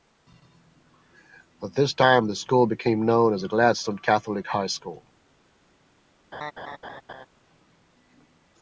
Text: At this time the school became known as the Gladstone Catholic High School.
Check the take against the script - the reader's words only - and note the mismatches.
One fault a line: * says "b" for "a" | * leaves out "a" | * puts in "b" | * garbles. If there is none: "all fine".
all fine